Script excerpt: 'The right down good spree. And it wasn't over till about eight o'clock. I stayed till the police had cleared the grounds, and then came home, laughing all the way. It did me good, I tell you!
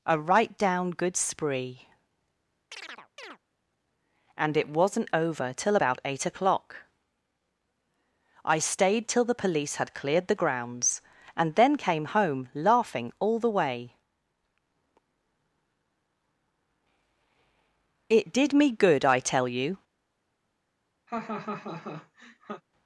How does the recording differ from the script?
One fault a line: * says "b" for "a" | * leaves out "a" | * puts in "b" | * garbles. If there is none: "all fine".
* says "A" for "The"